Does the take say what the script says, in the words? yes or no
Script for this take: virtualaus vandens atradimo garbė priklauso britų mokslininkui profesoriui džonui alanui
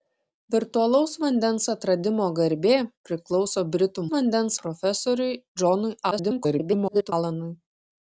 no